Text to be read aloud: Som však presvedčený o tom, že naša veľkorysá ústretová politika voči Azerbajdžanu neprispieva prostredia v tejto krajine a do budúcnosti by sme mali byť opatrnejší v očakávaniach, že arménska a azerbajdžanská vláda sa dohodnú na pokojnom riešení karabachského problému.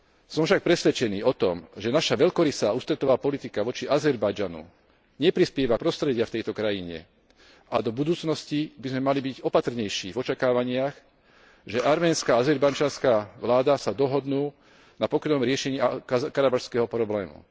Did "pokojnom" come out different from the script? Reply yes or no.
no